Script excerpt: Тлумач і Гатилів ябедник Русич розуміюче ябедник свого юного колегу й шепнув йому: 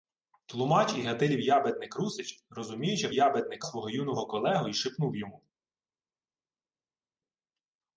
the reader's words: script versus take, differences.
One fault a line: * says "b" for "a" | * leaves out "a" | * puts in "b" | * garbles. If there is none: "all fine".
all fine